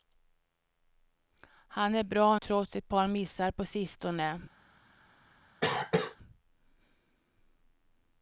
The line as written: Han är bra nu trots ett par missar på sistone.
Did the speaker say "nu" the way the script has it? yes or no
no